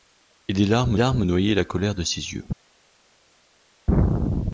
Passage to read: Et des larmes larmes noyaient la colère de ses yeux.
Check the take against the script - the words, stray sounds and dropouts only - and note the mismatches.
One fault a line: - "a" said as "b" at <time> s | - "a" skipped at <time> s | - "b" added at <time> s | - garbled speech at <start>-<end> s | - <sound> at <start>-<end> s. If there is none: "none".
none